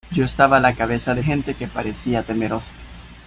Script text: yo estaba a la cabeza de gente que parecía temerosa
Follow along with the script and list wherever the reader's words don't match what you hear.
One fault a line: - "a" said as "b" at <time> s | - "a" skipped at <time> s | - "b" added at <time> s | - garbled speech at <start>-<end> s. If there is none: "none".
none